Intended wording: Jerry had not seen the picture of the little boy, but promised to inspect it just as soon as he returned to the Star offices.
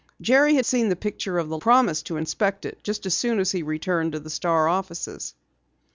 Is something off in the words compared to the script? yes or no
yes